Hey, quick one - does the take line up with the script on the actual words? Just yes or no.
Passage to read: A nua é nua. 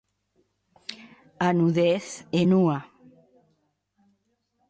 no